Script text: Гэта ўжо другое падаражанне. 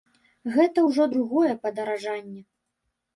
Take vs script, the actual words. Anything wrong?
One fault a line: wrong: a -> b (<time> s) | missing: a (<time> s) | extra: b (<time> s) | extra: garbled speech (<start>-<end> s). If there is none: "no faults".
no faults